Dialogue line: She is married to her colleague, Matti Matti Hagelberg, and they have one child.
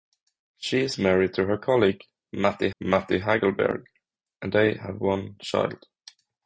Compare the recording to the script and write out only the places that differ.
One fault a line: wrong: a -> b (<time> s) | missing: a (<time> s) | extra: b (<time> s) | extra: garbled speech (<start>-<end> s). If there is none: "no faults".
no faults